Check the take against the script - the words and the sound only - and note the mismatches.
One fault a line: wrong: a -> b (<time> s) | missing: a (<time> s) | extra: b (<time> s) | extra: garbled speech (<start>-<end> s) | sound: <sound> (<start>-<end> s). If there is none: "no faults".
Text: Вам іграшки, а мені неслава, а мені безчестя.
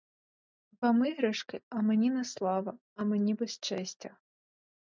no faults